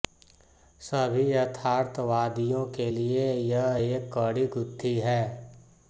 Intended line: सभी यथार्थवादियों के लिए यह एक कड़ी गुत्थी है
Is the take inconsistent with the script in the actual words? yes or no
no